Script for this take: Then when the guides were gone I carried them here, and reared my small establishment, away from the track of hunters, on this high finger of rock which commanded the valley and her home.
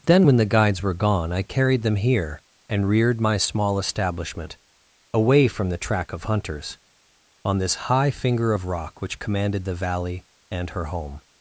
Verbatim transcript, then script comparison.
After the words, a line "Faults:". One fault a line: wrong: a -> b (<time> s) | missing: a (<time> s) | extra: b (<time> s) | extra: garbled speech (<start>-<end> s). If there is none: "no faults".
Then when the guides were gone I carried them here, and reared my small establishment, away from the track of hunters, on this high finger of rock which commanded the valley and her home.
Faults:
no faults